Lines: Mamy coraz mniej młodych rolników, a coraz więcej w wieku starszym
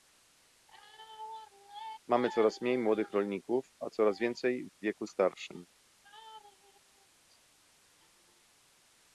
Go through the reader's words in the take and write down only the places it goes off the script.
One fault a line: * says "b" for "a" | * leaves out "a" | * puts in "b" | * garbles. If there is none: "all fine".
all fine